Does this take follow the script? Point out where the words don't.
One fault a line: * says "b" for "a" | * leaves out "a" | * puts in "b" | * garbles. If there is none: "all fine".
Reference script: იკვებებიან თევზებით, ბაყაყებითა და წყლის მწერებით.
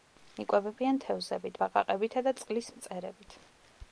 all fine